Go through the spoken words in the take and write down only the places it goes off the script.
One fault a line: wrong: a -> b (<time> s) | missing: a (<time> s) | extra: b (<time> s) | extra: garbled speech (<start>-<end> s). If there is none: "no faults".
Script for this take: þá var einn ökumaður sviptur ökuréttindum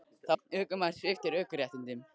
missing: var (0.3 s)